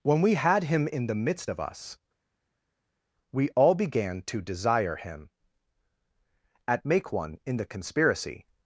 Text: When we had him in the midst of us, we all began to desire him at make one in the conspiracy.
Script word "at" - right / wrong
right